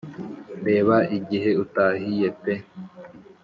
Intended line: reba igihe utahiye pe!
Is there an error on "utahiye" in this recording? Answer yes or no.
no